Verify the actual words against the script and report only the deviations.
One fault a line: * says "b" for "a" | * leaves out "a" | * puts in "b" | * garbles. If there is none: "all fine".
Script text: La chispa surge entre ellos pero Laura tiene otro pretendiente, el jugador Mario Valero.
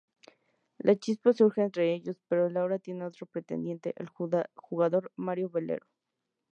all fine